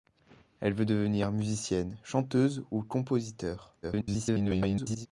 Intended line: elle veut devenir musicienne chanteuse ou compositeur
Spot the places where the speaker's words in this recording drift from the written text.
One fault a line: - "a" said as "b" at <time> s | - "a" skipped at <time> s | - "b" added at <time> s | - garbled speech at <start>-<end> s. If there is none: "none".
- garbled speech at 3.8-5.1 s